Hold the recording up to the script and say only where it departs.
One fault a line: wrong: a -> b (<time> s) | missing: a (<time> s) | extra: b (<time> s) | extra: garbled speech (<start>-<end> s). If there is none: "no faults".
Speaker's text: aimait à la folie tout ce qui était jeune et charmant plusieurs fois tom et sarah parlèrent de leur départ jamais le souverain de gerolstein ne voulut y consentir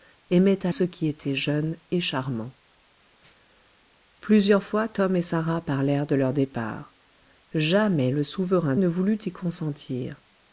missing: la folie tout (0.7 s)
missing: de gerolstein (8.7 s)